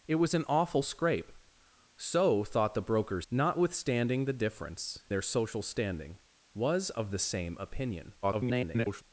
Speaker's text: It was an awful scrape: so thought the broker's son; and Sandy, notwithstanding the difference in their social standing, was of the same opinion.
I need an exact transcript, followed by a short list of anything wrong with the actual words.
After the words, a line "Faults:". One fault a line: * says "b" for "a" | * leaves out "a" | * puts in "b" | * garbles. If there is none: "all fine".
It was an awful scrape: so thought the broker's notwithstanding the difference their social standing, was of the same opinion. [garbled]
Faults:
* leaves out "son and Sandy"
* leaves out "in"
* garbles